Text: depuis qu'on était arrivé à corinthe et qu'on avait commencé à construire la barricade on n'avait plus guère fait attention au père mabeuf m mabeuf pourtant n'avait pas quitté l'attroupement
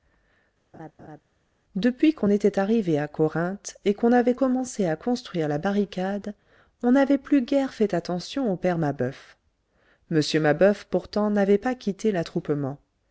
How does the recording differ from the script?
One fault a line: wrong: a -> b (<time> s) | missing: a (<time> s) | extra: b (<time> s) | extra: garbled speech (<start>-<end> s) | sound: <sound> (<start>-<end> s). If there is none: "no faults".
sound: laugh (0.7-1.2 s)